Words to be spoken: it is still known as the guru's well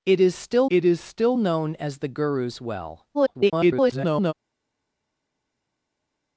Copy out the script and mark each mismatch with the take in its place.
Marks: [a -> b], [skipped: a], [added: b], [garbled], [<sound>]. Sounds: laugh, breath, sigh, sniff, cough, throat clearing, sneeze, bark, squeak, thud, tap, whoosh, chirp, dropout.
it is still [added: it is still] known as the guru's well [garbled]